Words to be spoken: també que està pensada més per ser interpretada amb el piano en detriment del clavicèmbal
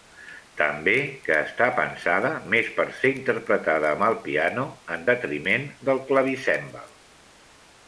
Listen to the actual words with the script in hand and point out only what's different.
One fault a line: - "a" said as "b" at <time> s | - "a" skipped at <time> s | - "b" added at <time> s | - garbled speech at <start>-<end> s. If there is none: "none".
none